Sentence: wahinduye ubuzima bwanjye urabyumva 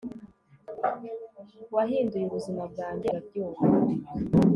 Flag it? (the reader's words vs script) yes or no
no